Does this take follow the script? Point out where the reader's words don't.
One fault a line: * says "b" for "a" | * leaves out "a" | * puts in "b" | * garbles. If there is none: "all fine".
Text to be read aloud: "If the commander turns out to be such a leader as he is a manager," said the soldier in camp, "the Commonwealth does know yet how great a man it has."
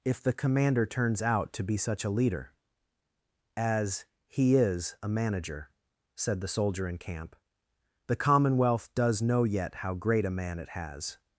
all fine